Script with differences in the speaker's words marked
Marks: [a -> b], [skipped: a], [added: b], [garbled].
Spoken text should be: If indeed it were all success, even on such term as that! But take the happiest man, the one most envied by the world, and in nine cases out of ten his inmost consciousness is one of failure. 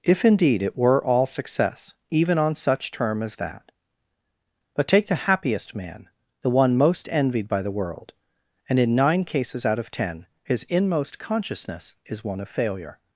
If indeed it were all success, even on such term as that! But take the happiest man, the one most envied by the world, and in nine cases out of ten his inmost consciousness is one of failure.